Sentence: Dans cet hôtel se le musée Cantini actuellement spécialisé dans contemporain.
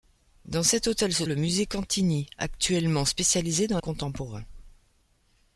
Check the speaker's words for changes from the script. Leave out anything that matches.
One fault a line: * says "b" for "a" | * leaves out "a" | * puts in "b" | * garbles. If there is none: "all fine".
all fine